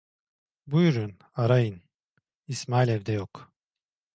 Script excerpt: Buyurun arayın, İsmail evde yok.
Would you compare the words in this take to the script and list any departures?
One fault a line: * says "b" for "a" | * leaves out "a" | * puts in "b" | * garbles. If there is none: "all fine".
all fine